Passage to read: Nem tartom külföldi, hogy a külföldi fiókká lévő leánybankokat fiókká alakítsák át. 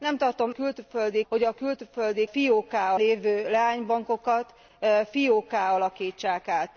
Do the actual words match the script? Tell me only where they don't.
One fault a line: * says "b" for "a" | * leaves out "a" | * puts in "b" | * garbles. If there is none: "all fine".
all fine